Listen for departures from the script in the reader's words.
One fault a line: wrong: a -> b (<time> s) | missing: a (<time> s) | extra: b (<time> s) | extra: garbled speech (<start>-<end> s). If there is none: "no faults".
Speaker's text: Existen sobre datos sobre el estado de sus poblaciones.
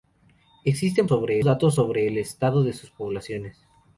no faults